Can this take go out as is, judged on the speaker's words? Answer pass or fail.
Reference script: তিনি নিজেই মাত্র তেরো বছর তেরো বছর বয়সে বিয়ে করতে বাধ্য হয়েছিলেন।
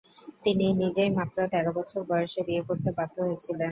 fail